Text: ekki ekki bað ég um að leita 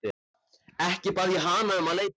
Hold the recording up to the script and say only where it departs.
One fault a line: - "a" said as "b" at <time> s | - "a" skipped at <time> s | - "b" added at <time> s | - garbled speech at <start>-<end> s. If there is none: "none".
- "ekki" skipped at 1.1 s
- "hana" added at 1.4 s